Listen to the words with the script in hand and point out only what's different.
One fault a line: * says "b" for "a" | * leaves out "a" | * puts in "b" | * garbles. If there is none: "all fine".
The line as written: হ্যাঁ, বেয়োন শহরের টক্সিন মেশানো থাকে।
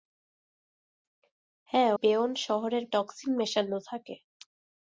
all fine